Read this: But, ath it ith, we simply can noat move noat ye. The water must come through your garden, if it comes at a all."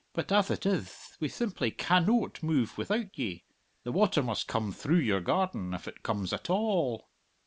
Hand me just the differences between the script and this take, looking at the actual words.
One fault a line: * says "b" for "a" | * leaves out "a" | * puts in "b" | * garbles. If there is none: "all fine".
* says "without" for "noat"